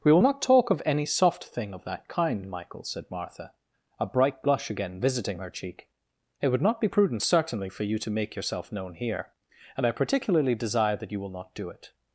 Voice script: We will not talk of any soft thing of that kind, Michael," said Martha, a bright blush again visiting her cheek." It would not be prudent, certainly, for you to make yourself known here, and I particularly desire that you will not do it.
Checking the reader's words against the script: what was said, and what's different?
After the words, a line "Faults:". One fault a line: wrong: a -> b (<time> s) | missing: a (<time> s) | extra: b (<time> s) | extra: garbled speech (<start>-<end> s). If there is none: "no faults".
We will not talk of any soft thing of that kind, Michael," said Martha, a bright blush again visiting her cheek." It would not be prudent, certainly, for you to make yourself known here, and I particularly desire that you will not do it.
Faults:
no faults